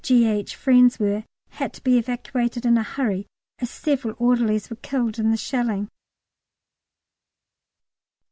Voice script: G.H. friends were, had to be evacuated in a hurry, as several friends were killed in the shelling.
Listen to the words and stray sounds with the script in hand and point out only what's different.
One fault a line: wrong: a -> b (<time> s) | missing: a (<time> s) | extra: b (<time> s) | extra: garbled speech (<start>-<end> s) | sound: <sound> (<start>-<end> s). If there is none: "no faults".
wrong: friends -> orderlies (4.2 s)